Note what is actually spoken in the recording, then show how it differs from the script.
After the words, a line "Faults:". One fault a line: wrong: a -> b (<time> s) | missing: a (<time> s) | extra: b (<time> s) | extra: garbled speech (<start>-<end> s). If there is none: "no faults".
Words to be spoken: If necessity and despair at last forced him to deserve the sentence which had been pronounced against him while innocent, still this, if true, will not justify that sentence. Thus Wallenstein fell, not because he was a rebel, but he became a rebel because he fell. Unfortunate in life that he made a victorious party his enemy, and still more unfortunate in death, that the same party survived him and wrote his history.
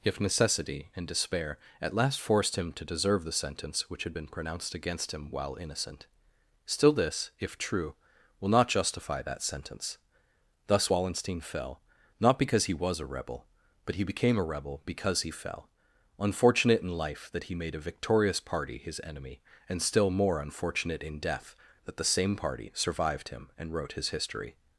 If necessity and despair at last forced him to deserve the sentence which had been pronounced against him while innocent, still this, if true, will not justify that sentence. Thus Wallenstein fell, not because he was a rebel, but he became a rebel because he fell. Unfortunate in life that he made a victorious party his enemy, and still more unfortunate in death, that the same party survived him and wrote his history.
Faults:
no faults